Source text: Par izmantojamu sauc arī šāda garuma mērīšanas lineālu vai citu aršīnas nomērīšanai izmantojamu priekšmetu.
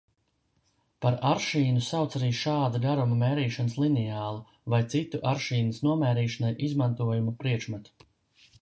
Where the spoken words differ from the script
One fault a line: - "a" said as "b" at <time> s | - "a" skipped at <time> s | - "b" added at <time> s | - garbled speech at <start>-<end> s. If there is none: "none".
- "izmantojamu" said as "aršīnu" at 1.3 s